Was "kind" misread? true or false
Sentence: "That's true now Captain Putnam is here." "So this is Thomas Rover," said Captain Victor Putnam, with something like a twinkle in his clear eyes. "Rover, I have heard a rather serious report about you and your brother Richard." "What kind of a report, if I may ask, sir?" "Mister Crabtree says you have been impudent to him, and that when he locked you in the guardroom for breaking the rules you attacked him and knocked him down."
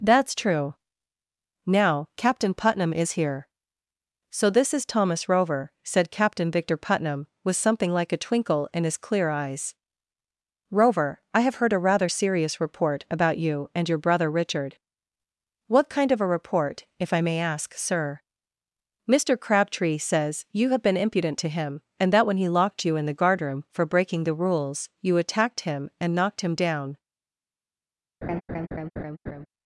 false